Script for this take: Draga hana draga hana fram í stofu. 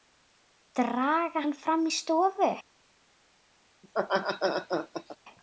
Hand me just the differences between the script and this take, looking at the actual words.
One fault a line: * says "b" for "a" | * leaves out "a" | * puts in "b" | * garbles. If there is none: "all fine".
* leaves out "draga hana"